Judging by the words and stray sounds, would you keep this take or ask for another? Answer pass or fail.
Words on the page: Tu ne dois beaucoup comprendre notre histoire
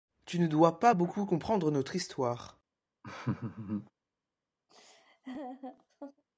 fail